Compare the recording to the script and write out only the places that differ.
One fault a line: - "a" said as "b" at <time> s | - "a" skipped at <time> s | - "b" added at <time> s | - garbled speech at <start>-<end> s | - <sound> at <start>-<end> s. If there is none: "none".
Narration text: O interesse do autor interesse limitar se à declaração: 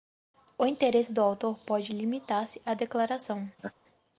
- "interesse" said as "pode" at 1.6 s
- laugh at 3.6-3.7 s